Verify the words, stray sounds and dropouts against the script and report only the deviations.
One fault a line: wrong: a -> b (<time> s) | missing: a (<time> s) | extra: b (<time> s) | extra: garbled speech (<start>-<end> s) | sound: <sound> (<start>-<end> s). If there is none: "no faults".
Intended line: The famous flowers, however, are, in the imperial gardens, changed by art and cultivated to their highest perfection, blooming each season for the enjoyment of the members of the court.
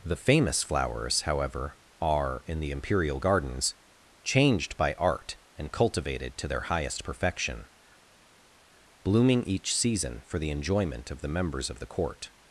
no faults